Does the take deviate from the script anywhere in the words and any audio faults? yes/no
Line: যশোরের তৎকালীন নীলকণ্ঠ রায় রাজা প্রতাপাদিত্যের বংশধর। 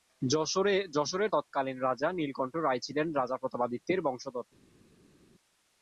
yes